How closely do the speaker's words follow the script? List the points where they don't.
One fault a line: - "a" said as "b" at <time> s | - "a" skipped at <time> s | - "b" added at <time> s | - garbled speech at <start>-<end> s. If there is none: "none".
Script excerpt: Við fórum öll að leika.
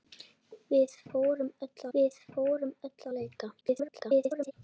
- "við fórum öll" added at 2.0 s
- garbled speech at 3.6-4.5 s